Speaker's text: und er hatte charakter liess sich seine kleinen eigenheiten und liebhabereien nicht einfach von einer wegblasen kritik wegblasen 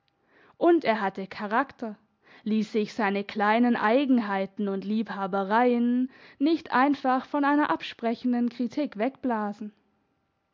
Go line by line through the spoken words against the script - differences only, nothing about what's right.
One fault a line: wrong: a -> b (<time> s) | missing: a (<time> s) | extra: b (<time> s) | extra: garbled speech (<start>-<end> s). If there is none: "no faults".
wrong: wegblasen -> absprechenden (7.7 s)